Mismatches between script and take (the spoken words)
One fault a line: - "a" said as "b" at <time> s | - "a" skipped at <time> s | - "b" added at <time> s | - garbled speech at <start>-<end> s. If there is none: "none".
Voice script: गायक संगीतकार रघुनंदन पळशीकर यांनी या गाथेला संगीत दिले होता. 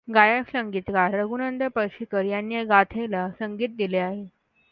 - "होता" said as "आहे" at 4.0 s